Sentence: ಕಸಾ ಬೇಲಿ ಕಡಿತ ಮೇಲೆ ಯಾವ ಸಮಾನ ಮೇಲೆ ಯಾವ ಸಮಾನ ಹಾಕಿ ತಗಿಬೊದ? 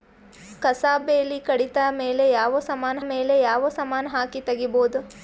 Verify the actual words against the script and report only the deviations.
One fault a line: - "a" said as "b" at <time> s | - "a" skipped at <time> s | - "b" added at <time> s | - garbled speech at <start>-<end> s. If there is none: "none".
none